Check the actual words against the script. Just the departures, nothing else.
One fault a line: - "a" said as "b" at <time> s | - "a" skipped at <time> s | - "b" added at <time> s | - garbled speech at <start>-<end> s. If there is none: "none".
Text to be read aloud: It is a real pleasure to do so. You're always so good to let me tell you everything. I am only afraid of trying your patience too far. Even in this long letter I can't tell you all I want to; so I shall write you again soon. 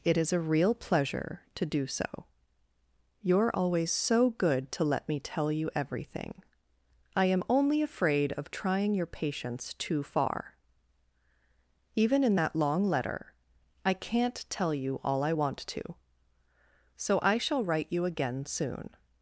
- "this" said as "that" at 12.3 s